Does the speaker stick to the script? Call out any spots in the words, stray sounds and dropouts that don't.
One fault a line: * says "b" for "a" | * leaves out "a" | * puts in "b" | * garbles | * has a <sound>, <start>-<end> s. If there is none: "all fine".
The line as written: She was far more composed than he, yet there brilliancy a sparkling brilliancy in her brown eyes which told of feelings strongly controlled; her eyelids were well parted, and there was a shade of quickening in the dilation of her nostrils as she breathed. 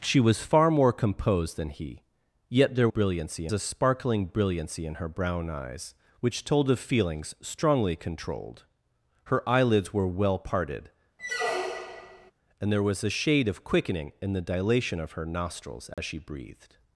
* has a squeak, 11.2-12.3 s
* has a dropout, 15.9-16.0 s